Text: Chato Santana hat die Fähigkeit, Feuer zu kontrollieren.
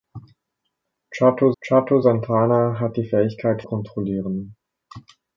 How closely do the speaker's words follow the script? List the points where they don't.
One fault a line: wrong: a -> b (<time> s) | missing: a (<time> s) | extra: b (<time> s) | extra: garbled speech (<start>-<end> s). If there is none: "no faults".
extra: chato (1.6 s)
missing: Feuer zu (3.6 s)